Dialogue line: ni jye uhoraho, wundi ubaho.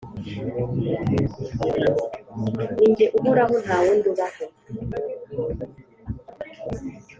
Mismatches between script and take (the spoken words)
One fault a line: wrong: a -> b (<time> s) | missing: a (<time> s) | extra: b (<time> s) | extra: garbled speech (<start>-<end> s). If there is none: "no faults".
extra: nta (3.6 s)